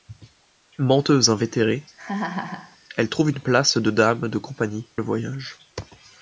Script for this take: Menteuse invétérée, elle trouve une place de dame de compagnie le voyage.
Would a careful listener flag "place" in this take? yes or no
no